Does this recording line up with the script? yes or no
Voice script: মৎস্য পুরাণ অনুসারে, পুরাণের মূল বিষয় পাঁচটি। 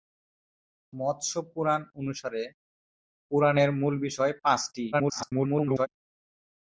no